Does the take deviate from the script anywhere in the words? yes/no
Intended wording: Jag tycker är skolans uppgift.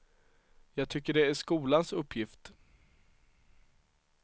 yes